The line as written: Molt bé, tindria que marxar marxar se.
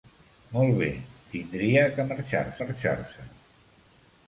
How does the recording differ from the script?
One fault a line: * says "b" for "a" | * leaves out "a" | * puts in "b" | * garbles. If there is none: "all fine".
all fine